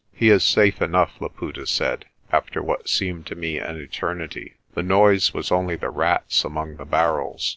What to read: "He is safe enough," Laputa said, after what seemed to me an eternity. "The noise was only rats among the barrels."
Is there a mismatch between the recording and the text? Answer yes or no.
yes